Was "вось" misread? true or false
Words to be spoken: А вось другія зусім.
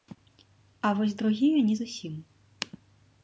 false